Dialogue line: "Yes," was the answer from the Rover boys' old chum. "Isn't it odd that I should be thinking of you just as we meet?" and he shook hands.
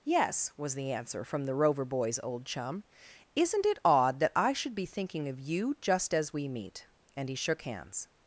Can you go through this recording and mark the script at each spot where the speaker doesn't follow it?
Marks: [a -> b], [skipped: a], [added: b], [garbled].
"Yes," was the answer from the Rover boys' old chum. "Isn't it odd that I should be thinking of you just as we meet?" and he shook hands.